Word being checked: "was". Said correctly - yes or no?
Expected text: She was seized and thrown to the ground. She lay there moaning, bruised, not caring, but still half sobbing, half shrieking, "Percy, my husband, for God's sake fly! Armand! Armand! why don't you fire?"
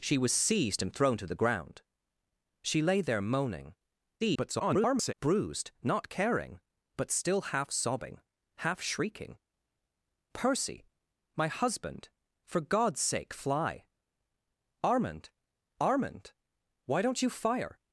yes